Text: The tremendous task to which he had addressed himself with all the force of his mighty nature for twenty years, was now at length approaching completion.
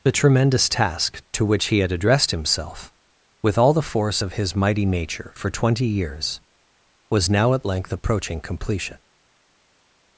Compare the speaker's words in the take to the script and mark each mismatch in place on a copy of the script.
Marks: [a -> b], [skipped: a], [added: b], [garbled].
The tremendous task to which he had addressed himself with all the force of his mighty nature for twenty years, was now at length approaching completion.